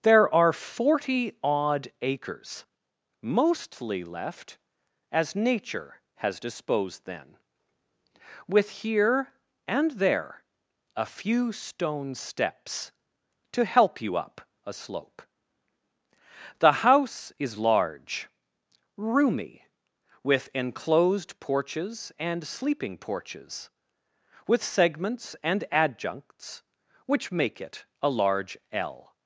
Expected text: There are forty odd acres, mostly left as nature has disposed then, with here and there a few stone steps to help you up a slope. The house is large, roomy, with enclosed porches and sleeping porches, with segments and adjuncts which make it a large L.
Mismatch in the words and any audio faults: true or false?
false